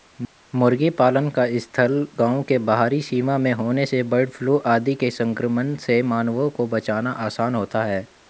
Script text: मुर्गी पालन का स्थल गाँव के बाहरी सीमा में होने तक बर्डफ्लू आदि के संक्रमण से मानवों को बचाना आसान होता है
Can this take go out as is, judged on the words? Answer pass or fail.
fail